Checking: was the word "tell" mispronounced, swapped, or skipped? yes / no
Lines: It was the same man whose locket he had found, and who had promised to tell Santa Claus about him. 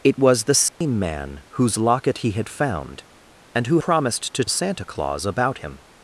yes